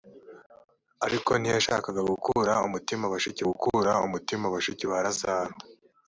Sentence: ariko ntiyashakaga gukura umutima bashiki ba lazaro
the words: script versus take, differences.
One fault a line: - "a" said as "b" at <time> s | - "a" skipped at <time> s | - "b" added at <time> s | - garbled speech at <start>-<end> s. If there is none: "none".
- "gukura umutima bashiki" added at 3.5 s